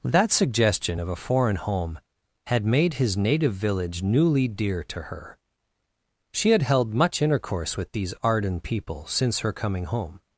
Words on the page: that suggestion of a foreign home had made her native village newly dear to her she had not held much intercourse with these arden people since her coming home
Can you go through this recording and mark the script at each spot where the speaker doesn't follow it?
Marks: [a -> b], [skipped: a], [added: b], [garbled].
that suggestion of a foreign home had made [her -> his] native village newly dear to her she had [skipped: not] held much intercourse with these arden people since her coming home